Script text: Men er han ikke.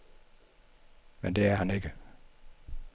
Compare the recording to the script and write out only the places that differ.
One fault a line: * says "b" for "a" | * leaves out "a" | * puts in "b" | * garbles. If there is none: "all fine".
* puts in "det"